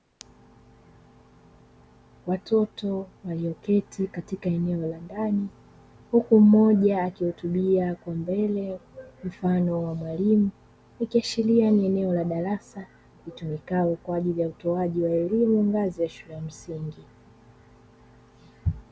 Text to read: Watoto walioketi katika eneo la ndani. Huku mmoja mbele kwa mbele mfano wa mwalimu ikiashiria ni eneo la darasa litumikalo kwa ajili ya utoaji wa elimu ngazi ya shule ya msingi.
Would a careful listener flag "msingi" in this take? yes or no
no